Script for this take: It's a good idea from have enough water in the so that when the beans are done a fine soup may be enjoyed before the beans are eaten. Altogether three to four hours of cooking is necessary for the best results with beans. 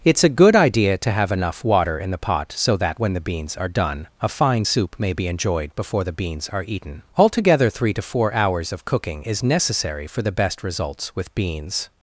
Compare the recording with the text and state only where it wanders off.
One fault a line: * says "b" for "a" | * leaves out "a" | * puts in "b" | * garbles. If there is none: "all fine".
* says "to" for "from"
* puts in "pot"